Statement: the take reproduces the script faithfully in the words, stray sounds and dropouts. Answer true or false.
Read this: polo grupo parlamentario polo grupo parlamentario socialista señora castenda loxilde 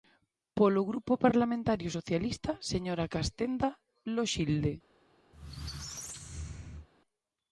false